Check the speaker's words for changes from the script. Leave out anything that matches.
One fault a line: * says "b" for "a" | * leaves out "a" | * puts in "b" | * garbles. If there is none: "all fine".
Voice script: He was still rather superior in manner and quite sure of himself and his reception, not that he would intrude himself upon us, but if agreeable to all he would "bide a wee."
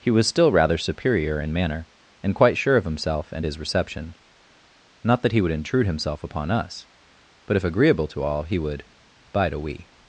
all fine